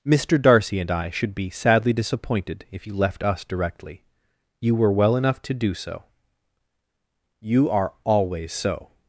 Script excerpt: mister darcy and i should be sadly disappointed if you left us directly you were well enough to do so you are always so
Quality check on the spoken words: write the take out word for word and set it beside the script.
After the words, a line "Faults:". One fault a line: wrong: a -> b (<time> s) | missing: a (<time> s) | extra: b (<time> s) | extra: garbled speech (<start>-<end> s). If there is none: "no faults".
mister darcy and i should be sadly disappointed if you left us directly you were well enough to do so you are always so
Faults:
no faults